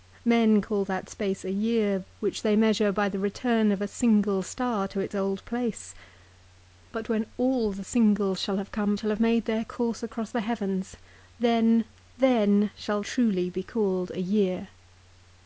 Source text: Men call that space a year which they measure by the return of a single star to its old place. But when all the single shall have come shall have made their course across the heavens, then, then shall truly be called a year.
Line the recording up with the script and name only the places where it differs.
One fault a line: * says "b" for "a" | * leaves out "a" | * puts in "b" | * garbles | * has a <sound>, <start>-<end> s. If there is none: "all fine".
all fine